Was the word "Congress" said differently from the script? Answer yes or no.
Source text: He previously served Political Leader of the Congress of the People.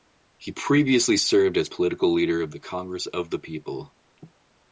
no